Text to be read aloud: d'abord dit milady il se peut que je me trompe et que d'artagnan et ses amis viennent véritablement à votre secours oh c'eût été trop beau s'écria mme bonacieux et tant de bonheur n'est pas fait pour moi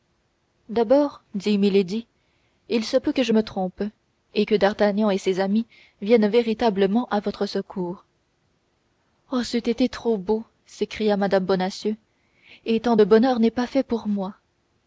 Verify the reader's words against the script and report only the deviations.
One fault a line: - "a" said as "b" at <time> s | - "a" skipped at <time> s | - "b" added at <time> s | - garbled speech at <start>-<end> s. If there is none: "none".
none